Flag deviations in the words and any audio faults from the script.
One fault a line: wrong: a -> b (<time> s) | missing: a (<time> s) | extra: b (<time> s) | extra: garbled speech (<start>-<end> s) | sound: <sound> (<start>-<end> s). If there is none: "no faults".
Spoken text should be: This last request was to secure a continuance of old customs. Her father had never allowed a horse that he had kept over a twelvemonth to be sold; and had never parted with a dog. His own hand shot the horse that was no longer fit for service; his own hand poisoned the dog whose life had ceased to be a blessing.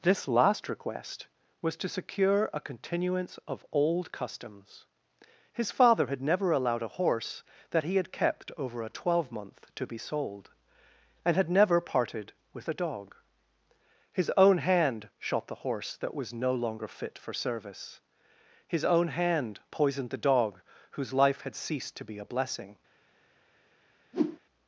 wrong: Her -> His (5.5 s)
sound: whoosh (24.1-24.4 s)